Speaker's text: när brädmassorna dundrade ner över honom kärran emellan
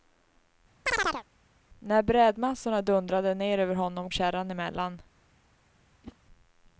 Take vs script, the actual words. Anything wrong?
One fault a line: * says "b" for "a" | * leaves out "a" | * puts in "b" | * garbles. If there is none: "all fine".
all fine